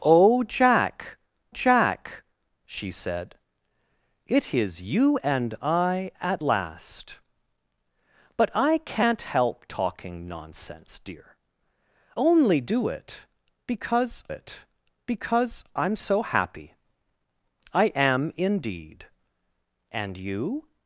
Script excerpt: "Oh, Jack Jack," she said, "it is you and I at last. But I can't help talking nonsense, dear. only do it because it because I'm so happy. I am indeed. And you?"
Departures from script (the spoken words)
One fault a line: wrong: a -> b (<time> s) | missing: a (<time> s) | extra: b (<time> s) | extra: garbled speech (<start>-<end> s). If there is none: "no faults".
no faults